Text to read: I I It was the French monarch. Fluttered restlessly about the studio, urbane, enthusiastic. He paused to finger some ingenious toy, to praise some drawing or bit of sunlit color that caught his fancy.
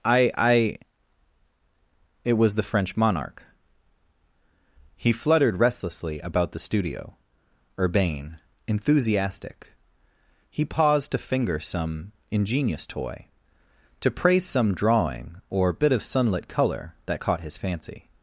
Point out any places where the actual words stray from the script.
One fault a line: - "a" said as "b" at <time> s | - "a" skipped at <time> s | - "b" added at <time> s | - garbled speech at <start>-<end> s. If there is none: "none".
- "He" added at 5.0 s